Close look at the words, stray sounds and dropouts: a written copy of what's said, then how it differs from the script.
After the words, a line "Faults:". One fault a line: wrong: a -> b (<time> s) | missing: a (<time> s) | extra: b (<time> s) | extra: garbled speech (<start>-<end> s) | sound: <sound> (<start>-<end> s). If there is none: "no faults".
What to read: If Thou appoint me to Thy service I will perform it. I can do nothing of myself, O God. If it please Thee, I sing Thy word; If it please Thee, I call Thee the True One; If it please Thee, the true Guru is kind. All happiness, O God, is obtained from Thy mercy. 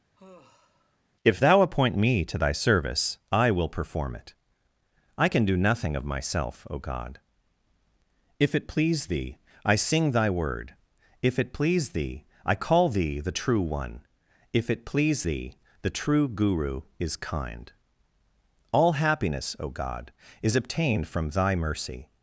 If Thou appoint me to Thy service I will perform it. I can do nothing of myself, O God. If it please Thee, I sing Thy word; If it please Thee, I call Thee the True One; If it please Thee, the true Guru is kind. All happiness, O God, is obtained from Thy mercy.
Faults:
sound: sigh (0.2-1.0 s)